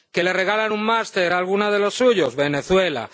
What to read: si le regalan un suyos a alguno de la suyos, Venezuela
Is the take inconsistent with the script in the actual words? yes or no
yes